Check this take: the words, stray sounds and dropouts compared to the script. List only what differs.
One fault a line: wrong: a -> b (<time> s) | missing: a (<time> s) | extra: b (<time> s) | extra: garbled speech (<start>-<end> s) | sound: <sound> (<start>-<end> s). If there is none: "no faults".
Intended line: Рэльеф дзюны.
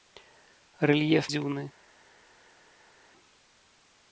no faults